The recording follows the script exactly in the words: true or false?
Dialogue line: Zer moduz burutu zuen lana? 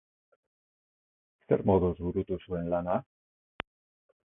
true